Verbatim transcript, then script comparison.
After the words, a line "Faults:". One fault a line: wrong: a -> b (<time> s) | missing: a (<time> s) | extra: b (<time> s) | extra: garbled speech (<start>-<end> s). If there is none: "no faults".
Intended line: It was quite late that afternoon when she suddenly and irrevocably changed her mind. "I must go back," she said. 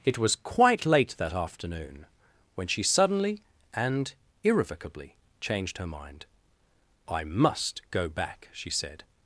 It was quite late that afternoon when she suddenly and irrevocably changed her mind. "I must go back," she said.
Faults:
no faults